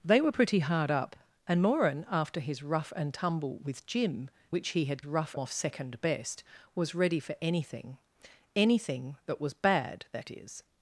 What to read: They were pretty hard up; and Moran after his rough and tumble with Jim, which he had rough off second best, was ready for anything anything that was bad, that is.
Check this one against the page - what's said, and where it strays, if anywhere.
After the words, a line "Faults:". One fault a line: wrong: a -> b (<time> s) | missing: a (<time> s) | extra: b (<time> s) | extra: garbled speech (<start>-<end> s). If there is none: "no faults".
They were pretty hard up; and Moran after his rough and tumble with Jim, which he had rough off second best, was ready for anything anything that was bad, that is.
Faults:
no faults